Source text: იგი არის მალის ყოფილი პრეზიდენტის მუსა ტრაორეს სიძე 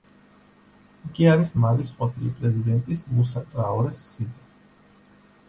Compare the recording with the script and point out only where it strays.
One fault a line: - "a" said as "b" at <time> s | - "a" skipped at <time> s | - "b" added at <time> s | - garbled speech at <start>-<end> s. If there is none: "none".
none